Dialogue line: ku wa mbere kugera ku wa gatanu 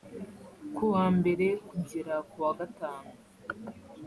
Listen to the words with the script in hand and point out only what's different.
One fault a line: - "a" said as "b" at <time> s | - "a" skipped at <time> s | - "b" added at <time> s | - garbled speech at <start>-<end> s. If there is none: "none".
none